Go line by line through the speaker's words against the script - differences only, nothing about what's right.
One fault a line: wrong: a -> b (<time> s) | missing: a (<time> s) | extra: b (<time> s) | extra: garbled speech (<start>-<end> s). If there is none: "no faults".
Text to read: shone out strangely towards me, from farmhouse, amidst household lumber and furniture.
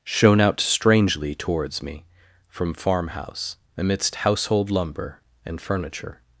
no faults